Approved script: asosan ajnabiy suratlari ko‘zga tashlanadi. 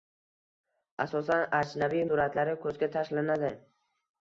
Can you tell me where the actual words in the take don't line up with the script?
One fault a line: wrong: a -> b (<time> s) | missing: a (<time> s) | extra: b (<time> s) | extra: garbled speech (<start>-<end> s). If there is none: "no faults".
no faults